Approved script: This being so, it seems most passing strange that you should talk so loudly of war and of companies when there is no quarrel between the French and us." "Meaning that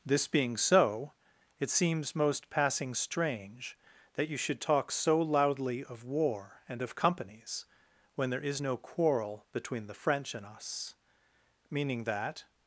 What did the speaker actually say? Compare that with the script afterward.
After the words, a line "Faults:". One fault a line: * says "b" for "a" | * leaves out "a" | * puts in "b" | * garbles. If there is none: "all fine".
This being so, it seems most passing strange that you should talk so loudly of war and of companies when there is no quarrel between the French and us." "Meaning that
Faults:
all fine